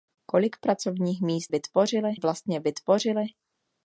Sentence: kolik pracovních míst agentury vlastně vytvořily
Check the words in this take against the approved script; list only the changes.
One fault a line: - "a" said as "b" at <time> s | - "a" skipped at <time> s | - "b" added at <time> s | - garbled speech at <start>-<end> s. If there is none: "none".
- "agentury" said as "vytvořily" at 1.5 s